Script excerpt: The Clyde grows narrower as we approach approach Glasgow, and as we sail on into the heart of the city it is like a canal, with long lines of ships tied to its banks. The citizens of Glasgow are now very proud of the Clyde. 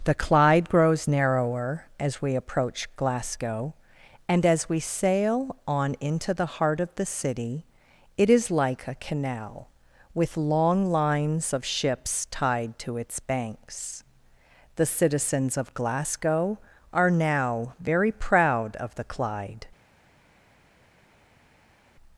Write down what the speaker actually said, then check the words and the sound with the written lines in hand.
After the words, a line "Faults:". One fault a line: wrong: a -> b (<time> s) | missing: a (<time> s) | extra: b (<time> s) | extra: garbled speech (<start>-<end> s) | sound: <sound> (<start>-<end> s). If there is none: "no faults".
The Clyde grows narrower as we approach Glasgow, and as we sail on into the heart of the city it is like a canal, with long lines of ships tied to its banks. The citizens of Glasgow are now very proud of the Clyde.
Faults:
missing: approach (2.9 s)